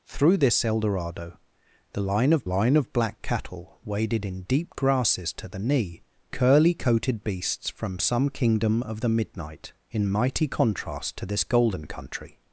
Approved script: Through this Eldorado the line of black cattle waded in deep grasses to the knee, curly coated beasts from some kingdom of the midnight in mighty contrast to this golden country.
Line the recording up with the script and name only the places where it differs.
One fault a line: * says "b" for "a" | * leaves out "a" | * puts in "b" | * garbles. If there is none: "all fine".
* puts in "line of"